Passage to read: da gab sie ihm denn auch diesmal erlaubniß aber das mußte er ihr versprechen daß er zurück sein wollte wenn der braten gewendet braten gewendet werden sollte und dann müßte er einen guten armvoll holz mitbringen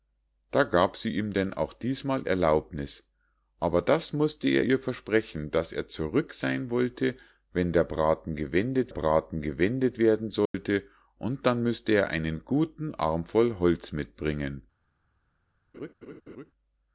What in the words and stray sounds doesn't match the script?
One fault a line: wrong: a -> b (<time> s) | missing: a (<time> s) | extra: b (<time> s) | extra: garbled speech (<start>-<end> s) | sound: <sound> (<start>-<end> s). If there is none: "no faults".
sound: dropout (10.5-10.5 s)
sound: laugh (15.7-16.5 s)